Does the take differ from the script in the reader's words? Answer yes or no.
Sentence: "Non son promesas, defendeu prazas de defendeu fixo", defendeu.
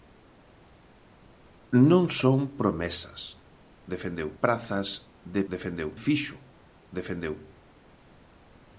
no